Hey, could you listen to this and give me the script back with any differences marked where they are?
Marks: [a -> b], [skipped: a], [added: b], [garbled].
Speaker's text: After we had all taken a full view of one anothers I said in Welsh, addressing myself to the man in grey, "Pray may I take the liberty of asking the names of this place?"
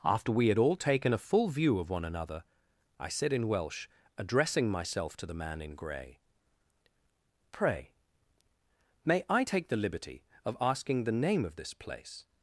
After we had all taken a full view of one [anothers -> another] I said in Welsh, addressing myself to the man in grey, "Pray may I take the liberty of asking the [names -> name] of this place?"